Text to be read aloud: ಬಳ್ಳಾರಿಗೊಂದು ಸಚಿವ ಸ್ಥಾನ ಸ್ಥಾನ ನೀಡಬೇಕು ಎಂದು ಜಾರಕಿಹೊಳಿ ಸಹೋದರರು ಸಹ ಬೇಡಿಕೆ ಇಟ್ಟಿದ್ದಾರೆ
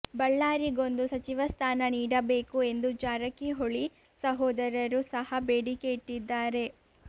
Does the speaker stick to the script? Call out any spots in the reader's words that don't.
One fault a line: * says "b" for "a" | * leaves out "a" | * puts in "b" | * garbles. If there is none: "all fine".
* leaves out "ಸ್ಥಾನ"